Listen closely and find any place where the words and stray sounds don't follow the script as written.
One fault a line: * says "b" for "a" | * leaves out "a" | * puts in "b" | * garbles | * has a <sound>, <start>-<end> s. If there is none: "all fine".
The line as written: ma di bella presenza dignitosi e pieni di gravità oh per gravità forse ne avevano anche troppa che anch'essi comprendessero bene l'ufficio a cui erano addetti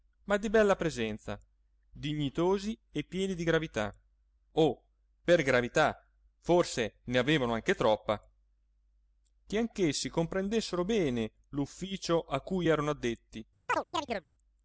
* has a chirp, 13.7-14.2 s